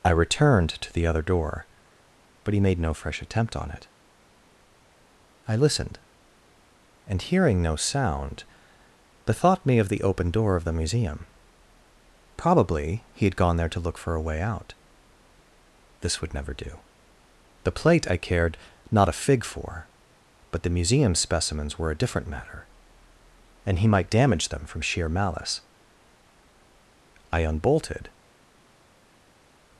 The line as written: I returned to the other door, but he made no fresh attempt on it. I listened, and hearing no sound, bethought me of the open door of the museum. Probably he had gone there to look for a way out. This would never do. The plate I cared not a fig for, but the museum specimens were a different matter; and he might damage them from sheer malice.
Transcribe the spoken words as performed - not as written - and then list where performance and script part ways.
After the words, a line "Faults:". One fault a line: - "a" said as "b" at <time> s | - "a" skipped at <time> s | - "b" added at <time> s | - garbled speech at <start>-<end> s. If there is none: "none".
I returned to the other door, but he made no fresh attempt on it. I listened, and hearing no sound, bethought me of the open door of the museum. Probably he had gone there to look for a way out. This would never do. The plate I cared not a fig for, but the museum specimens were a different matter; and he might damage them from sheer malice. "I unbolted
Faults:
- "I unbolted" added at 27.3 s